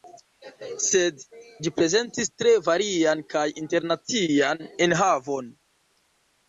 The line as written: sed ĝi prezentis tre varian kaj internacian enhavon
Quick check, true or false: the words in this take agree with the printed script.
true